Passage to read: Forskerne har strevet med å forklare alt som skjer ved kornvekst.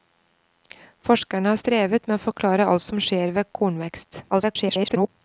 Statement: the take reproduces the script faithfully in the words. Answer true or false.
false